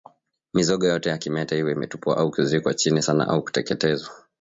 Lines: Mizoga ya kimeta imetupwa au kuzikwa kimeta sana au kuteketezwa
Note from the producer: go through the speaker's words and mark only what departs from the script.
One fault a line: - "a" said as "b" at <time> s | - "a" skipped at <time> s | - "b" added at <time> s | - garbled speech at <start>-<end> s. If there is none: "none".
- "yote" added at 0.9 s
- "iwe" added at 1.6 s
- "kimeta" said as "chini" at 2.7 s